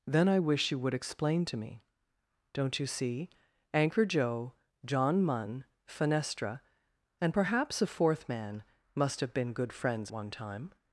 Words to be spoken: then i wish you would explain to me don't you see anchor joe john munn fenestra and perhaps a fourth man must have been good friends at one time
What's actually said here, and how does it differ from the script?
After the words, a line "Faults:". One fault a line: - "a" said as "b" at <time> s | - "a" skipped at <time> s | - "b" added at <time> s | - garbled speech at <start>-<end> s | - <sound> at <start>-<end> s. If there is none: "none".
then i wish you would explain to me don't you see anchor joe john munn fenestra and perhaps a fourth man must have been good friends one time
Faults:
- "at" skipped at 10.1 s